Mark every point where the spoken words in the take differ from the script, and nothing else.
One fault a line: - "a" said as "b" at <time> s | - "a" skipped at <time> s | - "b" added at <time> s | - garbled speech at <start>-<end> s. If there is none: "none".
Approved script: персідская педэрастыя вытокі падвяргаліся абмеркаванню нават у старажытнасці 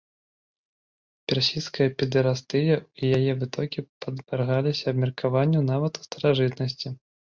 - "і яе" added at 2.8 s